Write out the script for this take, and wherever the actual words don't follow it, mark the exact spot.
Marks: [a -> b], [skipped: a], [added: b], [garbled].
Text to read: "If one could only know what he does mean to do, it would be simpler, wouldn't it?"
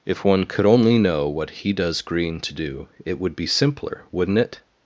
"If one could only know what he does [mean -> green] to do, it would be simpler, wouldn't it?"